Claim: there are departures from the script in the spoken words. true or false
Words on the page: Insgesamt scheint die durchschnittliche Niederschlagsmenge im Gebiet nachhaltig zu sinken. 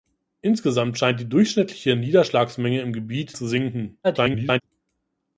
true